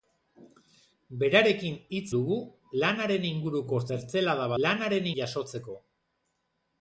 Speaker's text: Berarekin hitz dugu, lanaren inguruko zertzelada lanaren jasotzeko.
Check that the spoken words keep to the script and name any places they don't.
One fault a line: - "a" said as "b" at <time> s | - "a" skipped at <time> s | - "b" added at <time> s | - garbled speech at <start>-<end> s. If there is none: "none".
none